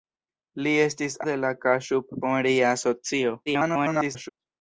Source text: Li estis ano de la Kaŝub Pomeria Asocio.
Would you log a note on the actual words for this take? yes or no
yes